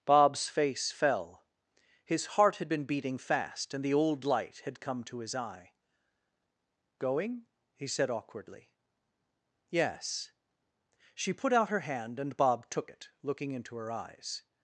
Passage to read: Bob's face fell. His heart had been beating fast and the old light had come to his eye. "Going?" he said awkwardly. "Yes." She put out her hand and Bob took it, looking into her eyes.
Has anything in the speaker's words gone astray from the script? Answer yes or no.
no